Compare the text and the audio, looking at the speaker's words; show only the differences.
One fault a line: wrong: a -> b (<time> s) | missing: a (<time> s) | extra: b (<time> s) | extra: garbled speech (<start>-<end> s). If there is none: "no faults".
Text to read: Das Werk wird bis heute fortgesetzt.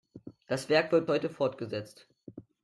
missing: bis (1.1 s)